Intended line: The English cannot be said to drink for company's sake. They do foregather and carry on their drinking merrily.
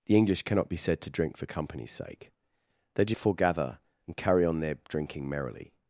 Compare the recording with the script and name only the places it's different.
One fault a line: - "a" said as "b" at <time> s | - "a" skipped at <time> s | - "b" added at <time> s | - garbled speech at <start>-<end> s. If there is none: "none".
none